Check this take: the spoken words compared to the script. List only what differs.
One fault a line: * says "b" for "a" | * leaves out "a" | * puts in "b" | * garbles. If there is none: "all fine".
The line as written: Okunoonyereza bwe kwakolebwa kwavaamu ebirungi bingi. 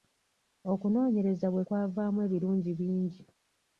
* leaves out "kwakolebwa"